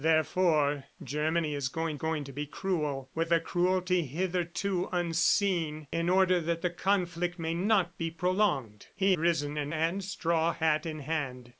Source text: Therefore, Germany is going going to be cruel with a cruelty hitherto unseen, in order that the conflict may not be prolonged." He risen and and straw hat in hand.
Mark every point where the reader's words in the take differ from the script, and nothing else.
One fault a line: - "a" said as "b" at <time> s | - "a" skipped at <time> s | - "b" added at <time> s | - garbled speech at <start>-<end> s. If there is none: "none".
none